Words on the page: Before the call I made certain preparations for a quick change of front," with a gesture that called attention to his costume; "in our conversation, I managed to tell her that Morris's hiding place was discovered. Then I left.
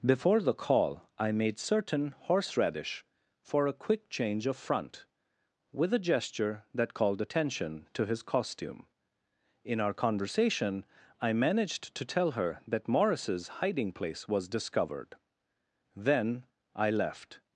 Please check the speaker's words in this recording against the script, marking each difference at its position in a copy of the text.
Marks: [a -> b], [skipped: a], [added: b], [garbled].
Before the call I made certain [preparations -> horseradish] for a quick change of front," with a gesture that called attention to his costume; "in our conversation, I managed to tell her that Morris's hiding place was discovered. Then I left.